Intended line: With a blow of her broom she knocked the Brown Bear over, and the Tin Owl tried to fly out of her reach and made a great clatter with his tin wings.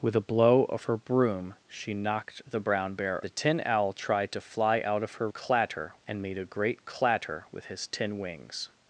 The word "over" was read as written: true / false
false